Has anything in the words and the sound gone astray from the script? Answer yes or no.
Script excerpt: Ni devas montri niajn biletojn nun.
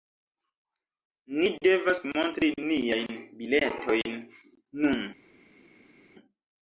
no